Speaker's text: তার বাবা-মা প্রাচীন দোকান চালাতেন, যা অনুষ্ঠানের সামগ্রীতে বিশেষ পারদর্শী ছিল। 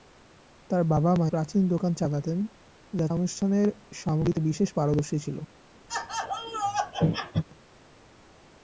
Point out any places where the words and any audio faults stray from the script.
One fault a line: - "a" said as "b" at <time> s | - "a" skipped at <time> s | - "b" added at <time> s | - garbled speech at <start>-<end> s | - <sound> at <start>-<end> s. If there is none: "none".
- laugh at 5.9-7.4 s